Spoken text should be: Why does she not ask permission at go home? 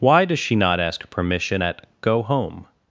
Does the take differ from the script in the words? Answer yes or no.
no